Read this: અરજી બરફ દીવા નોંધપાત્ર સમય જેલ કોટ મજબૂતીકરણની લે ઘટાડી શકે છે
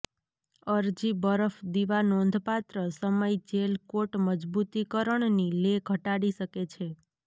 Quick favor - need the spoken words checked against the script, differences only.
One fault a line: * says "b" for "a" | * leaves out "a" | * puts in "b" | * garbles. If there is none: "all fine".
all fine